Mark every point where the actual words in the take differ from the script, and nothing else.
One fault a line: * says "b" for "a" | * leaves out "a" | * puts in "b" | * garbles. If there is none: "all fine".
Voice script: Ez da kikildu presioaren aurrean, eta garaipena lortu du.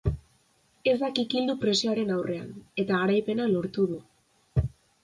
all fine